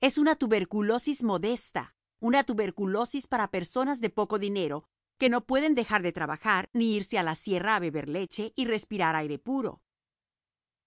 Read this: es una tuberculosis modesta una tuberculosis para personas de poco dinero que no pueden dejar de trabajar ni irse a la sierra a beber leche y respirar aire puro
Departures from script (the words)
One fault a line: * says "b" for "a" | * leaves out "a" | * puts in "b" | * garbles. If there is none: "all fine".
all fine